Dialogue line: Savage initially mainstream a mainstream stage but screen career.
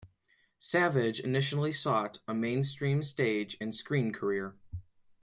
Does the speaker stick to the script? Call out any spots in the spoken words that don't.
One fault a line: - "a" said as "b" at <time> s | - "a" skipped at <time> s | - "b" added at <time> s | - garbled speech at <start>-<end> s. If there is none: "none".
- "mainstream" said as "sought" at 1.7 s
- "but" said as "and" at 3.6 s